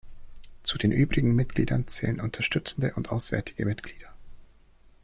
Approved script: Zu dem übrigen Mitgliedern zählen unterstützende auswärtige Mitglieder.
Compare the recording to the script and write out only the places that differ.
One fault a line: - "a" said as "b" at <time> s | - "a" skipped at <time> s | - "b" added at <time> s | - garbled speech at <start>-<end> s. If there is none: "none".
- "dem" said as "den" at 0.8 s
- "und" added at 3.0 s